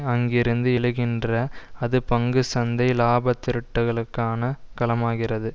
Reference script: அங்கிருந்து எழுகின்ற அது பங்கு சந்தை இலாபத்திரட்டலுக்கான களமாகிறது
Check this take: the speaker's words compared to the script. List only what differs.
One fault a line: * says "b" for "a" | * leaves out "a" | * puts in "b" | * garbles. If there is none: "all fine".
all fine